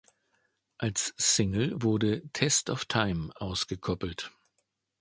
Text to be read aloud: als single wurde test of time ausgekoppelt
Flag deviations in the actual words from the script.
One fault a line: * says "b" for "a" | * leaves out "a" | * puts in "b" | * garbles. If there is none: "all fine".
all fine